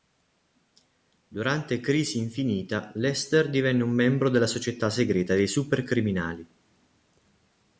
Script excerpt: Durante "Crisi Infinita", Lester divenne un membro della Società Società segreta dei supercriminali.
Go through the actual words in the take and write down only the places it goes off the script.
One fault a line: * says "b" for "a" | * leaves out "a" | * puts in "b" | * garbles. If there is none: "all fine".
* leaves out "Società"